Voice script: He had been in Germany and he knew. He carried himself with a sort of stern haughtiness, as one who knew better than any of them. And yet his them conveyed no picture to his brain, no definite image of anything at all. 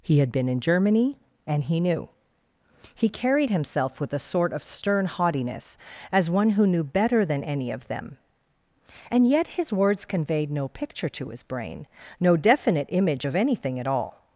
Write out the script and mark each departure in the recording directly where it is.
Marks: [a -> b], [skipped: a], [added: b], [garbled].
He had been in Germany and he knew. He carried himself with a sort of stern haughtiness, as one who knew better than any of them. And yet his [them -> words] conveyed no picture to his brain, no definite image of anything at all.